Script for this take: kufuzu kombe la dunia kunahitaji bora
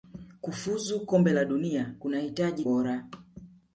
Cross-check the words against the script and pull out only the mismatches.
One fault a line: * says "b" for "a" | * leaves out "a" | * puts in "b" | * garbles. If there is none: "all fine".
all fine